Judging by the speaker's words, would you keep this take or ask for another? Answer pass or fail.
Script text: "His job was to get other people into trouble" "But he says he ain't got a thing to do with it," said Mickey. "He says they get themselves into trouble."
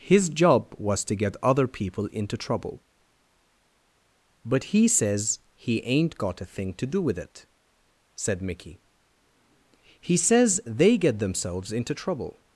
pass